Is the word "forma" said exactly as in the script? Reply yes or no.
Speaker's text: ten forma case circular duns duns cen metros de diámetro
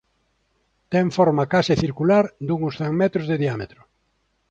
yes